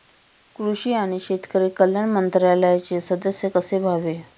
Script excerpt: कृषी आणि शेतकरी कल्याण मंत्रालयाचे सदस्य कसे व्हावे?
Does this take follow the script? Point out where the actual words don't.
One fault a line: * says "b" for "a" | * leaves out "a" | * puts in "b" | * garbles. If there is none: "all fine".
all fine